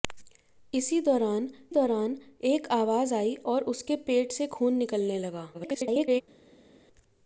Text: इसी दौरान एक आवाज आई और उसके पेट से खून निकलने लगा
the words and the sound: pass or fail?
fail